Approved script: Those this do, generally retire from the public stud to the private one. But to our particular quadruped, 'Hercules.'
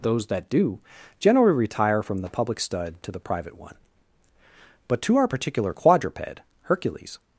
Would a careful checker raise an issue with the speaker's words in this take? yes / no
yes